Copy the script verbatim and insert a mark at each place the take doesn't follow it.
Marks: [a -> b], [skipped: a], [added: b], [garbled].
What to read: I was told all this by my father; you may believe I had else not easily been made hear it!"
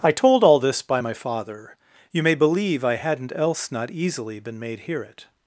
I [skipped: was] told all this by my father; you may believe I [had -> hadn't] else not easily been made hear it!"